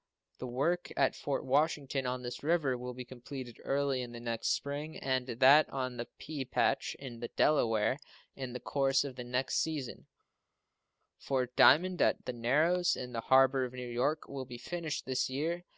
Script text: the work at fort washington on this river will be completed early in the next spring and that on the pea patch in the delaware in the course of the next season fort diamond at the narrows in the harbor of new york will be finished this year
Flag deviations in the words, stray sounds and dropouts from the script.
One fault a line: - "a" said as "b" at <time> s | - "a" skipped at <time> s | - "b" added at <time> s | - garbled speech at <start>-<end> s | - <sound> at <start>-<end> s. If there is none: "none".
none